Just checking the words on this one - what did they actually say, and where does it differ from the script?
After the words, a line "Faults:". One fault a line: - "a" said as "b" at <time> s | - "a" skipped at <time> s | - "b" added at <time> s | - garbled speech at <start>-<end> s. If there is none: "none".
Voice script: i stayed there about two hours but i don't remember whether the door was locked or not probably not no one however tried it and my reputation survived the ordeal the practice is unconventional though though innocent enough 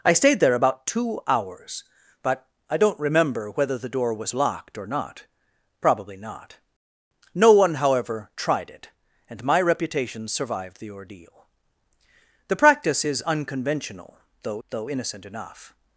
i stayed there about two hours but i don't remember whether the door was locked or not probably not no one however tried it and my reputation survived the ordeal the practice is unconventional though though innocent enough
Faults:
none